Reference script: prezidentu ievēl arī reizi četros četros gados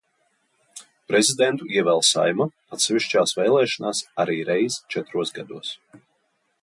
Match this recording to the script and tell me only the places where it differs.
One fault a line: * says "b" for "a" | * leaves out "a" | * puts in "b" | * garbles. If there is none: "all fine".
* puts in "saeima atsevišķās vēlēšanās"
* leaves out "četros"